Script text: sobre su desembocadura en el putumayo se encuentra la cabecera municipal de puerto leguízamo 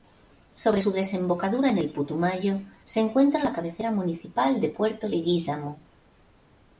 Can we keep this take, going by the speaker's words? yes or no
yes